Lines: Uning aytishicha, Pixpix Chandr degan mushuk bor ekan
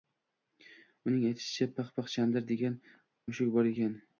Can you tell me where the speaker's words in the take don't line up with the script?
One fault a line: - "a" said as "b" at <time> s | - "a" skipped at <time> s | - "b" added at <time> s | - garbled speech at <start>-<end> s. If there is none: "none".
none